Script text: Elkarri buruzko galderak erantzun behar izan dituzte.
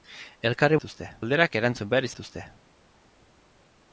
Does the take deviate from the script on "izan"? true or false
true